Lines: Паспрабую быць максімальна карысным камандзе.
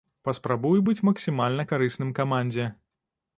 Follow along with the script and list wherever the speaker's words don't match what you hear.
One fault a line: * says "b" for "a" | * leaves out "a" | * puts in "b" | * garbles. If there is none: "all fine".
all fine